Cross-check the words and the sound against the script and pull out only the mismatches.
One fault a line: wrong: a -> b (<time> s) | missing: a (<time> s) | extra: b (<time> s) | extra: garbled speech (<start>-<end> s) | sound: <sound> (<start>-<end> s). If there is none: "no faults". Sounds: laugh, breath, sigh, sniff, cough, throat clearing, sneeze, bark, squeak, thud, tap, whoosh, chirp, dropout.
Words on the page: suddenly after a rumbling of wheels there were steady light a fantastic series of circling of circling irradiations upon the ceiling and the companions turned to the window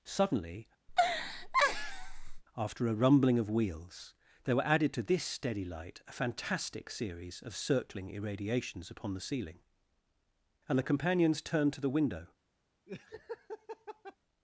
sound: laugh (0.9-2.4 s)
extra: added to this (4.7 s)
missing: of circling (8.1 s)
sound: laugh (12.9-14.2 s)